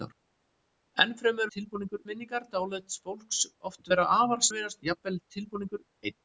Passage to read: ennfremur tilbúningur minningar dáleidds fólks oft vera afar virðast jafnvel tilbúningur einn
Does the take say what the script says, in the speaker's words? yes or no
yes